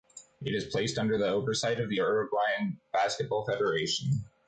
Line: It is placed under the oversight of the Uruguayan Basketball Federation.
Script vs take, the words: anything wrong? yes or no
no